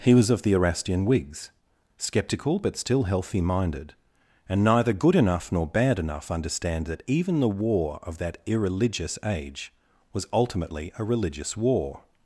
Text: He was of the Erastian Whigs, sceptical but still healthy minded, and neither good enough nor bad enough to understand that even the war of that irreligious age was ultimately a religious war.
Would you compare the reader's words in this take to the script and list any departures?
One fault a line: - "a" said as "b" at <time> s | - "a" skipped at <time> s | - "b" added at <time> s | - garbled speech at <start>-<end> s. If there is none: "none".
- "to" skipped at 6.3 s